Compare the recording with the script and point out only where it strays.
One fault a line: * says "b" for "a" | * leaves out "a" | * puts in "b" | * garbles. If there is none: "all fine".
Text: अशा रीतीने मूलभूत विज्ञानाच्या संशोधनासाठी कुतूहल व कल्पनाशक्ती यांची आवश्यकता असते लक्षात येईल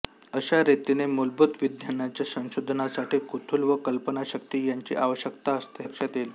all fine